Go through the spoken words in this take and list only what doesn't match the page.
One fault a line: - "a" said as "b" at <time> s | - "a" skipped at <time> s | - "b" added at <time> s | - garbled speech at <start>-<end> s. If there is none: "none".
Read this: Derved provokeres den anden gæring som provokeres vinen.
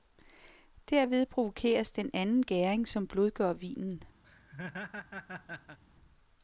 - "provokeres" said as "blødgør" at 3.1 s